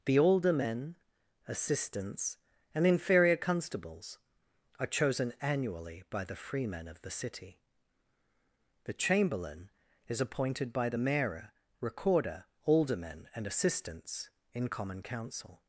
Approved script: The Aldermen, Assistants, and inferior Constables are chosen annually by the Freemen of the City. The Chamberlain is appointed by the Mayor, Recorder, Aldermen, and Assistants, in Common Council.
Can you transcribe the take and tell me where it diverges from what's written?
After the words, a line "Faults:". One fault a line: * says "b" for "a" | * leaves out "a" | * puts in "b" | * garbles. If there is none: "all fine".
The Aldermen, Assistants, and inferior Constables are chosen annually by the Freemen of the City. The Chamberlain is appointed by the Mayor, Recorder, Aldermen, and Assistants, in Common Council.
Faults:
all fine